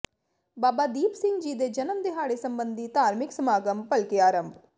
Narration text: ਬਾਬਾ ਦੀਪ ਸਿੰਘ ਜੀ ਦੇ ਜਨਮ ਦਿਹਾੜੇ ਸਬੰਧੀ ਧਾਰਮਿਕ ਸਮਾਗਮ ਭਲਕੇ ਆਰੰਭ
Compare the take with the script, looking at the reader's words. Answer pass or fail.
pass